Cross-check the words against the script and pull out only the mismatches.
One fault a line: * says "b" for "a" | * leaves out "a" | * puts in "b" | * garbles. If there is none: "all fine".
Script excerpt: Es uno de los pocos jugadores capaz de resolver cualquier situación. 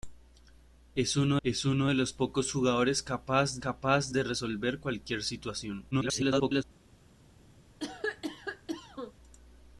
* puts in "es uno"
* puts in "capaz"
* garbles